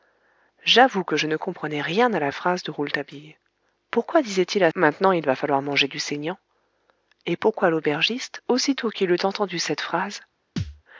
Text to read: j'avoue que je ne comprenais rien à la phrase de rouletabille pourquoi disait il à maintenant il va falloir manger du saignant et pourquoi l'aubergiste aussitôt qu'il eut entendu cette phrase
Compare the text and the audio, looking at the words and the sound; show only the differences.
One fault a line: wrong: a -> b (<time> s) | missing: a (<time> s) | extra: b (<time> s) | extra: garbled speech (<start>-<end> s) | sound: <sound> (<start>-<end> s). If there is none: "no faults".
sound: thud (10.6-10.8 s)